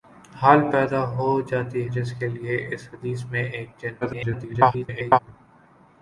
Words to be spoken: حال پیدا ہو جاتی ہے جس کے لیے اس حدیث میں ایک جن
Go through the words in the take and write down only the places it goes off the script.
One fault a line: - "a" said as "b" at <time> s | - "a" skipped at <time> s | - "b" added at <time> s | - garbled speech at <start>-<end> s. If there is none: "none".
- "ہے" skipped at 1.8 s
- garbled speech at 4.0-5.2 s